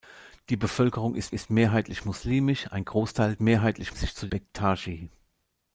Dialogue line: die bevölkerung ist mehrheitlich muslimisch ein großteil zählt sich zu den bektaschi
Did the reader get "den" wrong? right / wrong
wrong